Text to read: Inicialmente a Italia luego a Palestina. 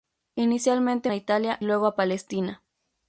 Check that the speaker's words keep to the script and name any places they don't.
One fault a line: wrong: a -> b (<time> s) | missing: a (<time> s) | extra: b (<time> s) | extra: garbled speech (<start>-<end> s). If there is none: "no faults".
no faults